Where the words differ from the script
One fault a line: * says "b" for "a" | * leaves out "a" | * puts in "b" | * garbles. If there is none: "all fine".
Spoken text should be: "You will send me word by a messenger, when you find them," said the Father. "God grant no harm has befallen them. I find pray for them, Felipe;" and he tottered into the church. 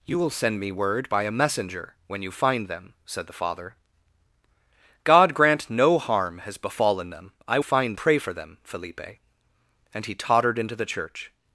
all fine